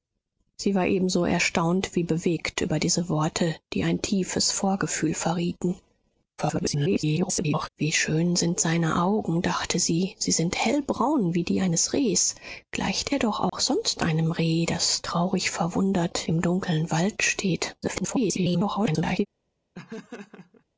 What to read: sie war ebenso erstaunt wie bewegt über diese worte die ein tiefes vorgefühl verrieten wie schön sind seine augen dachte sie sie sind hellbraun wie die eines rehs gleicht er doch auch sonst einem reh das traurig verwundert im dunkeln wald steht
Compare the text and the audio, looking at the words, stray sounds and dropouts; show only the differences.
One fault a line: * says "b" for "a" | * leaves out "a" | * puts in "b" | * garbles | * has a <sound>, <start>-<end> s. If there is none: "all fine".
* garbles
* has a dropout, 13.5-13.5 s
* garbles
* has a laugh, 19.7-20.6 s